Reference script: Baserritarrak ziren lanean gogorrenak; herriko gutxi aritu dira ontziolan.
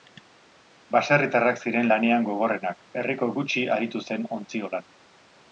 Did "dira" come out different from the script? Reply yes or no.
yes